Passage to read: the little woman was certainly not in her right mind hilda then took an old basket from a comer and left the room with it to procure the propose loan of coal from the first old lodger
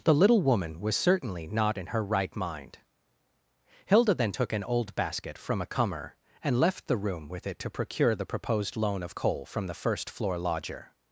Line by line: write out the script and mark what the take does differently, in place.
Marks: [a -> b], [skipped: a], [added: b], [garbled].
the little woman was certainly not in her right mind hilda then took an old basket from a comer and left the room with it to procure the [propose -> proposed] loan of coal from the first [old -> floor] lodger